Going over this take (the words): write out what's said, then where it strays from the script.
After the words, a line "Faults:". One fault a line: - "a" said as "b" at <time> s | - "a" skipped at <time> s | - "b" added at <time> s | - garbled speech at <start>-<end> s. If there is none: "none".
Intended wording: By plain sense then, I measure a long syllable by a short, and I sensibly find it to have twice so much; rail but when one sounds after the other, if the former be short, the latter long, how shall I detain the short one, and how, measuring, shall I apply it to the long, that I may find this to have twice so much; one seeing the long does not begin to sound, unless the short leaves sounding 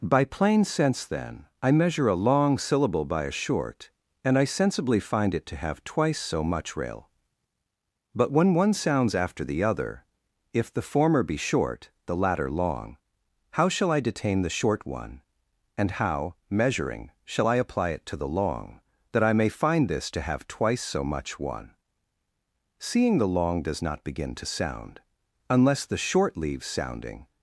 By plain sense then, I measure a long syllable by a short, and I sensibly find it to have twice so much; rail but when one sounds after the other, if the former be short, the latter long, how shall I detain the short one, and how, measuring, shall I apply it to the long, that I may find this to have twice so much; one seeing the long does not begin to sound, unless the short leaves sounding
Faults:
none